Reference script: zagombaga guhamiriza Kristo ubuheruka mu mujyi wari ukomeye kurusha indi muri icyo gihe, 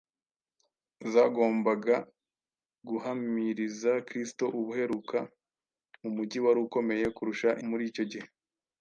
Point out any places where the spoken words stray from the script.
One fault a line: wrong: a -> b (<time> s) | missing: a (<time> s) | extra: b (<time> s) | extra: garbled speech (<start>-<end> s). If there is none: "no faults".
missing: indi (7.5 s)